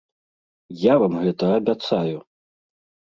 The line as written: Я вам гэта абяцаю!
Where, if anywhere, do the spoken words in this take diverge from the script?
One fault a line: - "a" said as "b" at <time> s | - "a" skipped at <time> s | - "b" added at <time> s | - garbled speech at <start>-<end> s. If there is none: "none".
none